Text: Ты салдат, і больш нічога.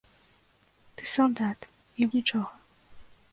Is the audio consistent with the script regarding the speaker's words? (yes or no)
no